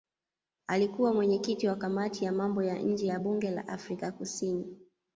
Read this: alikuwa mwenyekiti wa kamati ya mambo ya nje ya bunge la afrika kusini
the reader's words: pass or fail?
pass